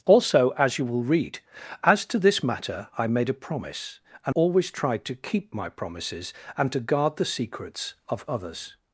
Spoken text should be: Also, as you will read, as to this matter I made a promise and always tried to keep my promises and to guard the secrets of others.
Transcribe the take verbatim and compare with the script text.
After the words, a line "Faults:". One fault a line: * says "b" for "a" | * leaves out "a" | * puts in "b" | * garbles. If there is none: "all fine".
Also, as you will read, as to this matter I made a promise and always tried to keep my promises and to guard the secrets of others.
Faults:
all fine